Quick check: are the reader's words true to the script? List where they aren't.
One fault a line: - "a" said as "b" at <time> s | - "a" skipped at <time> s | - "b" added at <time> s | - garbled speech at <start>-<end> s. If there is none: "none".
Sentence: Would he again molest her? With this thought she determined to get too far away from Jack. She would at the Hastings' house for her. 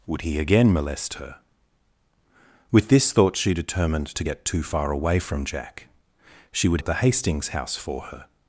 none